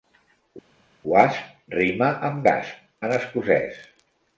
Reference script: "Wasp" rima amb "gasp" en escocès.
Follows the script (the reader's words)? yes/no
yes